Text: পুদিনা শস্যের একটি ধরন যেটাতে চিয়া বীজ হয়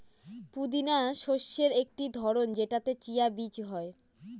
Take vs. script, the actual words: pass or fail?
pass